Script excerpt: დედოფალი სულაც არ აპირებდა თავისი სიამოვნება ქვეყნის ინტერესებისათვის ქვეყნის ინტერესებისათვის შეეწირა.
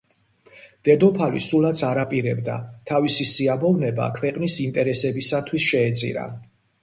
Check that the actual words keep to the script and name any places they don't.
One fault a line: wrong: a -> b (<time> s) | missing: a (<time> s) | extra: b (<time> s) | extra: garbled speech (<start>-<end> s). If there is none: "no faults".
missing: ქვეყნის ინტერესებისათვის (5.7 s)